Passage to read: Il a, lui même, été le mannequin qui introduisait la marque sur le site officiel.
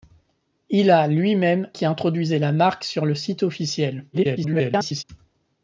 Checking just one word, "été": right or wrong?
wrong